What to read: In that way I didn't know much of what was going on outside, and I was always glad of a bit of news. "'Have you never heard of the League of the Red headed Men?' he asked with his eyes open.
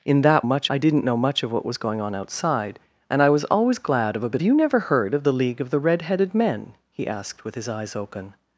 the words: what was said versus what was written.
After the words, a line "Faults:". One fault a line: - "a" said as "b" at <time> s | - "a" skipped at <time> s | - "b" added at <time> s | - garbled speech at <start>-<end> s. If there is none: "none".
In that much I didn't know much of what was going on outside, and I was always glad of a bit you never heard of the League of the Red headed Men?' he asked with his eyes open.
Faults:
- "way" said as "much" at 0.4 s
- "of news Have" skipped at 4.4 s